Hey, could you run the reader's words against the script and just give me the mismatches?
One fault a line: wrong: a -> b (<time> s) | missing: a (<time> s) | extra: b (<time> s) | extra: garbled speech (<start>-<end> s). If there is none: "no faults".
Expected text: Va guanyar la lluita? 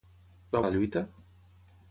missing: guanyar (0.6 s)